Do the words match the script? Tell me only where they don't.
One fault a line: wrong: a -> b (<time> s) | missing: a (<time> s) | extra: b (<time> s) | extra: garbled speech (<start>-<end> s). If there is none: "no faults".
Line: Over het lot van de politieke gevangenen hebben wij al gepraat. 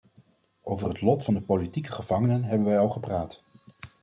no faults